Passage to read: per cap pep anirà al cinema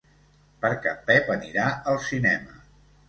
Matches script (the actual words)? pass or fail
pass